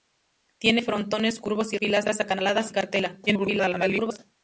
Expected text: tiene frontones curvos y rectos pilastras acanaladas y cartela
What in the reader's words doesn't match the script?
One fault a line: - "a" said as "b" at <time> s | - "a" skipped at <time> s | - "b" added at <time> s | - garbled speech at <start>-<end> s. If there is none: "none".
- "rectos" skipped at 1.8 s
- garbled speech at 3.3-4.2 s